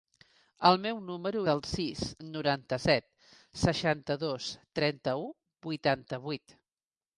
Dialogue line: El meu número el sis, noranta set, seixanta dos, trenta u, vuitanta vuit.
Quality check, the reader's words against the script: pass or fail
pass